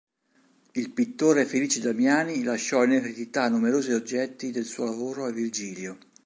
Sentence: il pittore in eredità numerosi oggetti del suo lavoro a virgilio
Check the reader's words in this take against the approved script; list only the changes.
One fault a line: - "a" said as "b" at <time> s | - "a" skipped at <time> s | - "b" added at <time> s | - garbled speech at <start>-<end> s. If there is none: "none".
- "felice damiani lasciò" added at 1.4 s